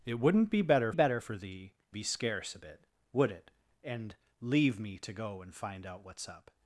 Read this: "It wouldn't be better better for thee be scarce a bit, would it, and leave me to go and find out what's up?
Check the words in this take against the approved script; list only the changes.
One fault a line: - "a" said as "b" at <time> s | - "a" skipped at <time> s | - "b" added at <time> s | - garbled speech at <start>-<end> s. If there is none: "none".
none